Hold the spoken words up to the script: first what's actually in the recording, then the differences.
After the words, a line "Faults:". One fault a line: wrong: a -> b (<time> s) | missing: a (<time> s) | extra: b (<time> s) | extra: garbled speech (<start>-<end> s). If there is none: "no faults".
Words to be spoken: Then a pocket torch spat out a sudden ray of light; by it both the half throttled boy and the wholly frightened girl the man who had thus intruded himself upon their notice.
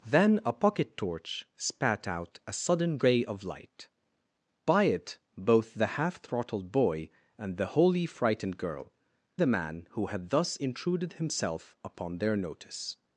Then a pocket torch spat out a sudden ray of light; by it both the half throttled boy and the wholly frightened girl the man who had thus intruded himself upon their notice.
Faults:
no faults